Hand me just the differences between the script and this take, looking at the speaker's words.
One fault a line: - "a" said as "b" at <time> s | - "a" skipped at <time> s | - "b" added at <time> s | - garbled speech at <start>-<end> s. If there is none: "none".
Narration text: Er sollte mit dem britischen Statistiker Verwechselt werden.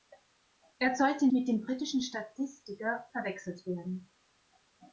none